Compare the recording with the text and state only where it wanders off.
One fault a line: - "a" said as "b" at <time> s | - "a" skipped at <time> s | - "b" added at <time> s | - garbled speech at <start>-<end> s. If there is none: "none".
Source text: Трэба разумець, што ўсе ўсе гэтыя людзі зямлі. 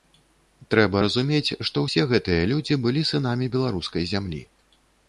- "ўсе" skipped at 2.1 s
- "былі сынамі беларускай" added at 2.9 s